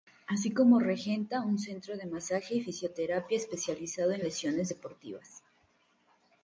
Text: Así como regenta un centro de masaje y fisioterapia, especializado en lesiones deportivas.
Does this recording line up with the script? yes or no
yes